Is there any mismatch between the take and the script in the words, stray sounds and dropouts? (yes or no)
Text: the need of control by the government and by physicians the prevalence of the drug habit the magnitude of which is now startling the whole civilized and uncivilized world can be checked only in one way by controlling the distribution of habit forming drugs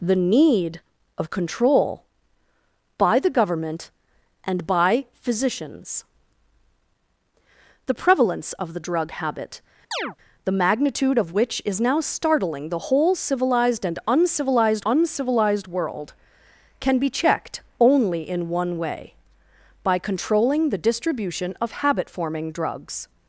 yes